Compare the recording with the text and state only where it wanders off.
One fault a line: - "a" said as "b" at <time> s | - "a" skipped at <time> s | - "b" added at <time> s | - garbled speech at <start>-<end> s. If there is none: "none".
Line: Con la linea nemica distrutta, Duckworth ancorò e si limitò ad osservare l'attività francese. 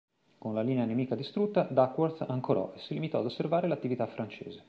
none